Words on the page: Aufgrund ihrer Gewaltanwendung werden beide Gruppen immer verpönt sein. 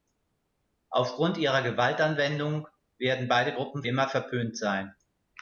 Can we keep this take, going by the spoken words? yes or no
yes